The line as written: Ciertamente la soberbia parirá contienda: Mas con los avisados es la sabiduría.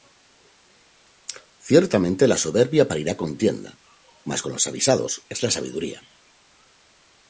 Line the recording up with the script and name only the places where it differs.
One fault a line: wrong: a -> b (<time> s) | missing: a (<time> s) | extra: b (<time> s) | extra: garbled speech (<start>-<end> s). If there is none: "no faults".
no faults